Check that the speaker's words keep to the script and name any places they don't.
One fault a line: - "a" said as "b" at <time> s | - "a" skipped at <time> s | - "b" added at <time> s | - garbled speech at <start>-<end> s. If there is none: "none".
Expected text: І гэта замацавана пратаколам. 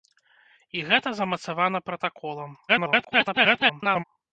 - garbled speech at 2.7-4.0 s